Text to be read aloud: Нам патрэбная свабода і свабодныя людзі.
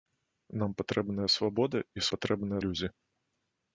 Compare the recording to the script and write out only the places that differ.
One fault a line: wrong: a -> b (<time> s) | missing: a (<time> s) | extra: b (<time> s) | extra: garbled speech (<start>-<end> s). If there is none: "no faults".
wrong: свабодныя -> патрэбная (2.1 s)